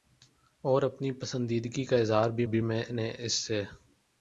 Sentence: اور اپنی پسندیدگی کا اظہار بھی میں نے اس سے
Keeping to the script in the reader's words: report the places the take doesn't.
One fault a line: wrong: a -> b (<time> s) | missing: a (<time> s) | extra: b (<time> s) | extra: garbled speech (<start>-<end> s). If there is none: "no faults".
extra: بھی (2.4 s)